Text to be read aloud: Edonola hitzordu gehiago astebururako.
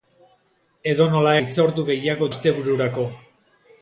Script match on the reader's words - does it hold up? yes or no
yes